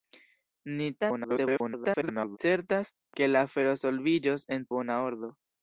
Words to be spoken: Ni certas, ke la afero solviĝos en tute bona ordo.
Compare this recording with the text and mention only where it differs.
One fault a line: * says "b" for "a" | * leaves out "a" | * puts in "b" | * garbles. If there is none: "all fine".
* garbles
* leaves out "tute"